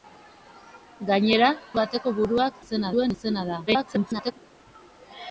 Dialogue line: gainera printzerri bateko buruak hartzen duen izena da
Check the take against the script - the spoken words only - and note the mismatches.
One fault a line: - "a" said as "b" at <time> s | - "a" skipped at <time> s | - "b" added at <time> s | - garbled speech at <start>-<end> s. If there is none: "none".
- "printzerri" skipped at 1.5 s
- "hartzen" said as "izena" at 2.6 s
- garbled speech at 3.7-4.3 s